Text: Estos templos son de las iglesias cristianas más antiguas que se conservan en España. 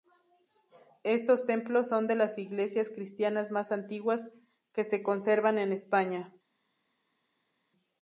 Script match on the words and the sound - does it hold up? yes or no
yes